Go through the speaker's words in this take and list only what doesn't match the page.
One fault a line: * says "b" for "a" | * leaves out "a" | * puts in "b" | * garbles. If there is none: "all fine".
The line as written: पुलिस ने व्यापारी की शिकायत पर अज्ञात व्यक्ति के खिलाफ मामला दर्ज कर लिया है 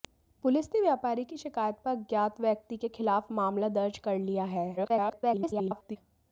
* garbles